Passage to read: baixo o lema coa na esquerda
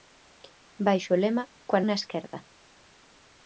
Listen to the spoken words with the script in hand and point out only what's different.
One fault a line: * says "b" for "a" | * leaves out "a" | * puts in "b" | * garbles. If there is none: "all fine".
all fine